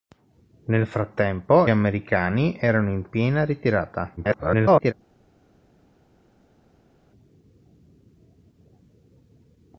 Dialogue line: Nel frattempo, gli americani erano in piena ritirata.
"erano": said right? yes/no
yes